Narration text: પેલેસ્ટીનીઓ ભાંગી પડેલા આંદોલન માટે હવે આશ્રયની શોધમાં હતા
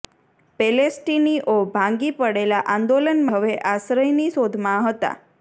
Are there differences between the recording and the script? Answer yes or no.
yes